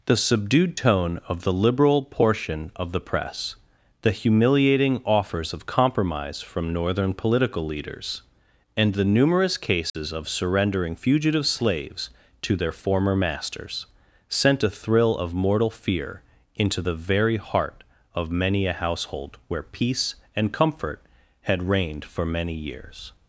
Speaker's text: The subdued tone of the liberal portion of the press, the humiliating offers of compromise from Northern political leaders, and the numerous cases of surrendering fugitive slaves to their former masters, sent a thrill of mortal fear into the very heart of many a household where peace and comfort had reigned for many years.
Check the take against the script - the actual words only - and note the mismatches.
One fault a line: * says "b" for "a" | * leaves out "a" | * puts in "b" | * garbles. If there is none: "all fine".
all fine